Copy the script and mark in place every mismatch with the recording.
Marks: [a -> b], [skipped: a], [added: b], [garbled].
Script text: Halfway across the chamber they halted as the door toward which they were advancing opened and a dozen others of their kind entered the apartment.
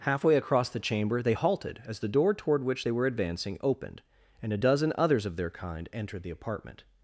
Halfway across the chamber they halted as the door toward which they were advancing opened and a dozen others of their kind entered the apartment.